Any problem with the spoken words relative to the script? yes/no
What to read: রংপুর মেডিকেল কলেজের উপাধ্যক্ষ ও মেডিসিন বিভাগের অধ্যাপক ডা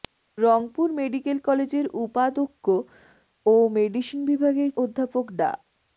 no